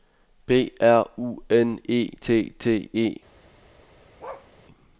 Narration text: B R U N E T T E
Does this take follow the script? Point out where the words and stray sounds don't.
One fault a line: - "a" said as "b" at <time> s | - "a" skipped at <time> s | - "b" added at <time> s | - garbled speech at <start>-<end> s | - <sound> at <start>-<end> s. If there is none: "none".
- bark at 4.2-4.5 s